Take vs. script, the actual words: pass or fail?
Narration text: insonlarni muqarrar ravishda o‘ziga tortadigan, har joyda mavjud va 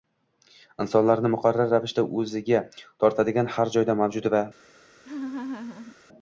pass